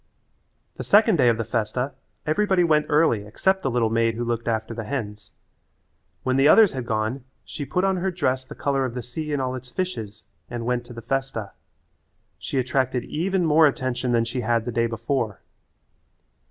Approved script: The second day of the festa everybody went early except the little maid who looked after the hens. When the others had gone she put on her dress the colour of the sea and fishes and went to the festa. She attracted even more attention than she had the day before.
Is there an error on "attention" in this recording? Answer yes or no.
no